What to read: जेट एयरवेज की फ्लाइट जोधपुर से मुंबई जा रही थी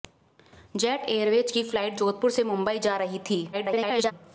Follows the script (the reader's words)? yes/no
no